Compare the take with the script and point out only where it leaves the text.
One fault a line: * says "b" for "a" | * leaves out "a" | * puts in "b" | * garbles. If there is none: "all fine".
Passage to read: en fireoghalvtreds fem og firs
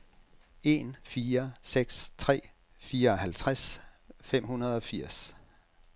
* puts in "fire seks tre"
* puts in "hundrede"